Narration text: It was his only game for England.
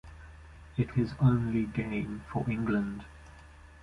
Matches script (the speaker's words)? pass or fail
fail